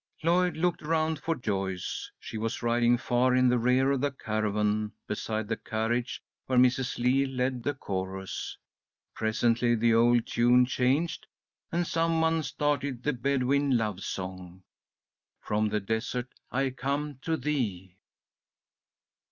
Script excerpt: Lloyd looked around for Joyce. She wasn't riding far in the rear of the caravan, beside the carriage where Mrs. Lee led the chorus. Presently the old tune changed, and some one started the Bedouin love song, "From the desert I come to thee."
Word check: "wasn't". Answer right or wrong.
wrong